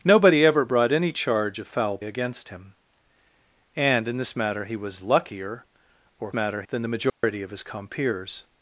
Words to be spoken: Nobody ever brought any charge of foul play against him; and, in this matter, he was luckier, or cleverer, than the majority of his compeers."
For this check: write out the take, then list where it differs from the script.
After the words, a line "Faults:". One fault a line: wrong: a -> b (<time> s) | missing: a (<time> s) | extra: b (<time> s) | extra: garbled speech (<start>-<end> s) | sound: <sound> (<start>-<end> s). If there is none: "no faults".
Nobody ever brought any charge of foul against him; and, in this matter, he was luckier, or matter, than the majority of his compeers."
Faults:
missing: play (2.0 s)
wrong: cleverer -> matter (6.3 s)
sound: dropout (7.1-7.2 s)